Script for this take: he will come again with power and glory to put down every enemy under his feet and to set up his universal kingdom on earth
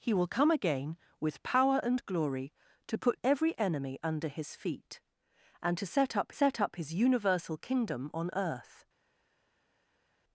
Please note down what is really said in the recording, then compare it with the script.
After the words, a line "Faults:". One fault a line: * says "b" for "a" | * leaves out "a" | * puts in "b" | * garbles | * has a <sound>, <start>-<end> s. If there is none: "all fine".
he will come again with power and glory to put every enemy under his feet and to set up set up his universal kingdom on earth
Faults:
* leaves out "down"
* puts in "set up"